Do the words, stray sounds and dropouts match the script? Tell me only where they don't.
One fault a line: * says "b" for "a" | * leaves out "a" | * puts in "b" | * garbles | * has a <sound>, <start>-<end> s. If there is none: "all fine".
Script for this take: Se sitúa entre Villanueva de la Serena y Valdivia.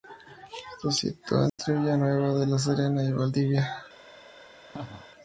* has a dropout, 1.5-1.6 s
* has a laugh, 4.7-5.1 s